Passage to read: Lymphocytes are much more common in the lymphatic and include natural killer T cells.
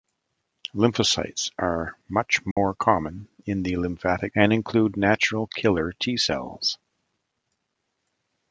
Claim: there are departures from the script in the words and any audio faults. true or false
true